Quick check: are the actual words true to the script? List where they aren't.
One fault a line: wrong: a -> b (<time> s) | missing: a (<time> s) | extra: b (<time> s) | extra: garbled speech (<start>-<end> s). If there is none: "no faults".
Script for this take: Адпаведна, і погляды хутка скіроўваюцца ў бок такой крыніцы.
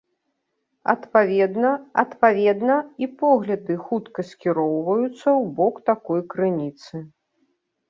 extra: адпаведна (2.0 s)